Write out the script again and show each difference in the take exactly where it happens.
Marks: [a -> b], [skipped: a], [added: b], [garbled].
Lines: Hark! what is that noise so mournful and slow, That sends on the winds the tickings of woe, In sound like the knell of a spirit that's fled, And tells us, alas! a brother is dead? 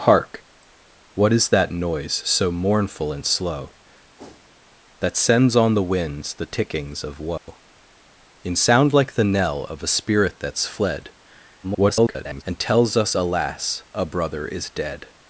Hark! what is that noise so mournful and slow, That sends on the winds the tickings of woe, In sound like the knell of a spirit that's fled, [garbled] And tells us, alas! a brother is dead?